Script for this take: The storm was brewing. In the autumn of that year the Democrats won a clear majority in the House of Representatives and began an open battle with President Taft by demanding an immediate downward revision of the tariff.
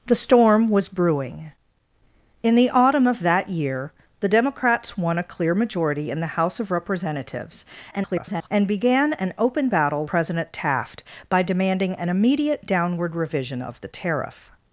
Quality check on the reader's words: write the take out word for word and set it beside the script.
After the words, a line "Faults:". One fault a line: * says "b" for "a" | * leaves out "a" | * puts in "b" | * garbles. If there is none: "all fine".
The storm was brewing. In the autumn of that year the Democrats won a clear majority in the House of Representatives [garbled] and began an open battle President Taft by demanding an immediate downward revision of the tariff.
Faults:
* garbles
* leaves out "with"